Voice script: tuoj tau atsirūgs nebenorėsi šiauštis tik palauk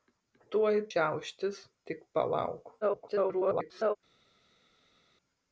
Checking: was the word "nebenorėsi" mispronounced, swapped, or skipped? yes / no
yes